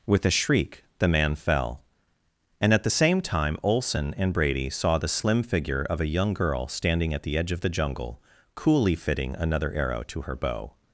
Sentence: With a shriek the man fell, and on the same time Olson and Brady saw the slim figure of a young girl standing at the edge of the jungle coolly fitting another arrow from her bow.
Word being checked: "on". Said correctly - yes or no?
no